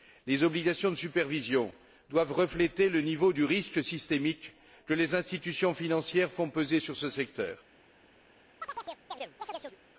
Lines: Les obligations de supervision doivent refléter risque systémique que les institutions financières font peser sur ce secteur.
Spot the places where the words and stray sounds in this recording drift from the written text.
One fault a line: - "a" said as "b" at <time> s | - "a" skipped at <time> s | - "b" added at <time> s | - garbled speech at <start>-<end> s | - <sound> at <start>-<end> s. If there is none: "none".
- "le niveau du" added at 2.9 s
- chirp at 8.6-9.8 s